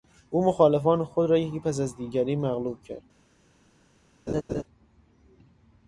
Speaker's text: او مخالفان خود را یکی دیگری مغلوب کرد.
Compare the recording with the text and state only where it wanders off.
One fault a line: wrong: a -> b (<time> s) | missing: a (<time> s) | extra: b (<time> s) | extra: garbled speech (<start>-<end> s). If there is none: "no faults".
extra: پس از (1.6 s)